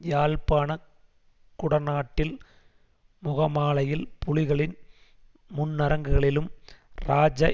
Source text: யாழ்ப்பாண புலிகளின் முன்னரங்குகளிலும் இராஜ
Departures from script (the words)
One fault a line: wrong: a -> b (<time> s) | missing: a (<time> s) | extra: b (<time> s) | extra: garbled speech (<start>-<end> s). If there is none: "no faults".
extra: குடநாட்டில் முகமாலையில் (1.6 s)